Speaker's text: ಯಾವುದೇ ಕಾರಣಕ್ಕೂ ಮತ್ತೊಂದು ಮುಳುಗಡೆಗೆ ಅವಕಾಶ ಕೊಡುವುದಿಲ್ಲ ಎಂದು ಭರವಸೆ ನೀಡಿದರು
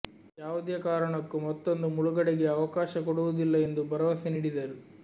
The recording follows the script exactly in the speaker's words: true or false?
true